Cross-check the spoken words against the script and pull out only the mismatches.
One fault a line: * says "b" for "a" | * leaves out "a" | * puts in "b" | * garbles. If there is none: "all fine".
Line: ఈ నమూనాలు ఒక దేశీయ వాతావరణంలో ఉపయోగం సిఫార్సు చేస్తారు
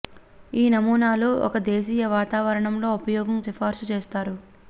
all fine